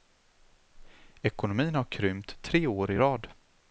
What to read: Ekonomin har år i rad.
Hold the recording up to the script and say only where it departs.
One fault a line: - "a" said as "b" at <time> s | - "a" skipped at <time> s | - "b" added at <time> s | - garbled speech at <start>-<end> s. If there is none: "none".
- "krympt tre" added at 1.8 s